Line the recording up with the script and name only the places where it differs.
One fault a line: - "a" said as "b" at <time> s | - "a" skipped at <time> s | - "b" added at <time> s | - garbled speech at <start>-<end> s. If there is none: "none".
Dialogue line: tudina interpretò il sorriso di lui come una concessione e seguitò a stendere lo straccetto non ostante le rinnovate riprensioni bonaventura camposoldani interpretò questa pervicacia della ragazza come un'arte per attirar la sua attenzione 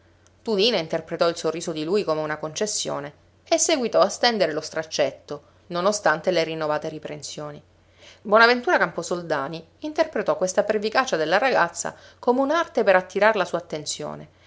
none